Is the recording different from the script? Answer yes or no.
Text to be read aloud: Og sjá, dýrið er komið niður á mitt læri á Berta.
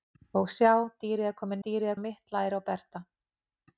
yes